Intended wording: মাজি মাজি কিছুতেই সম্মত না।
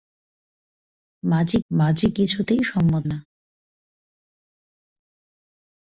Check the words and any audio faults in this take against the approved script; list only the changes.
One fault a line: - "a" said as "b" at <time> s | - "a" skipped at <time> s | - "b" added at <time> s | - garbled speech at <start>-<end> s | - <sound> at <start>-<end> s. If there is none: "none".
none